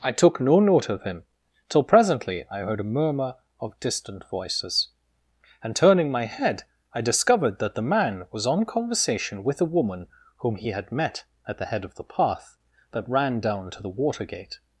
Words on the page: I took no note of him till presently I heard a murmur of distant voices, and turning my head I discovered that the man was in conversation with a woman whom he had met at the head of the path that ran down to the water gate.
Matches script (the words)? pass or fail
fail